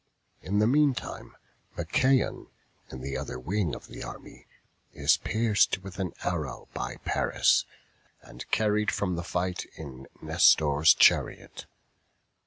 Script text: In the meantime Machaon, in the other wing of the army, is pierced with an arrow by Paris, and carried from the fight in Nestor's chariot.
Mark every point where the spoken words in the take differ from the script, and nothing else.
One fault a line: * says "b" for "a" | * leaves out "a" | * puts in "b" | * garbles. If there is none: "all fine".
all fine